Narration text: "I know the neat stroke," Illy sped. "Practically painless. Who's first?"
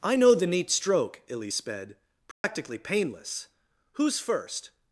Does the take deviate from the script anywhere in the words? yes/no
no